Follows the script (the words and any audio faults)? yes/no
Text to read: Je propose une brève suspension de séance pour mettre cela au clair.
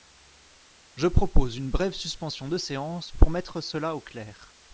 yes